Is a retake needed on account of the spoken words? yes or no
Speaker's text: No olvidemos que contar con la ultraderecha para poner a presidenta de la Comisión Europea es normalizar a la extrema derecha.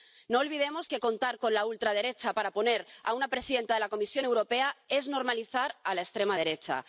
yes